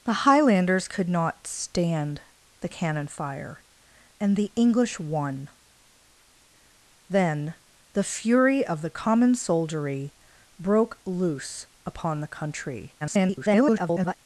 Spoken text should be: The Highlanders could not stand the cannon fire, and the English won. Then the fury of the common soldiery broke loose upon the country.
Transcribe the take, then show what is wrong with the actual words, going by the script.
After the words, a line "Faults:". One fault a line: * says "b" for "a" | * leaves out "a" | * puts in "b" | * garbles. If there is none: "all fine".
The Highlanders could not stand the cannon fire, and the English won. Then the fury of the common soldiery broke loose upon the country. [garbled]
Faults:
* garbles